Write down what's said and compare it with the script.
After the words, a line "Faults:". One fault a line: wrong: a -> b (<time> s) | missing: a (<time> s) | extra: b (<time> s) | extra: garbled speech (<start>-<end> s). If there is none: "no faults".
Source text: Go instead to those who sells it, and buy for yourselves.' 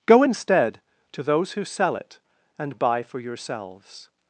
Go instead to those who sell it, and buy for yourselves.'
Faults:
wrong: sells -> sell (1.6 s)